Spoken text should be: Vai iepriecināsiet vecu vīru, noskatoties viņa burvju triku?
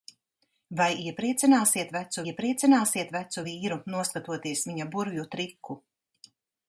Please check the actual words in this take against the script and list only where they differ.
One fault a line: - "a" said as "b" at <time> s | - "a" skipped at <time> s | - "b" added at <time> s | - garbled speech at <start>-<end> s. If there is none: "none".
- "iepriecināsiet vecu" added at 2.3 s